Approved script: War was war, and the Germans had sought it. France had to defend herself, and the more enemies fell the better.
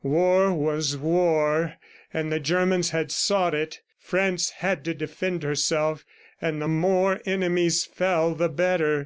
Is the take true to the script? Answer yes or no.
yes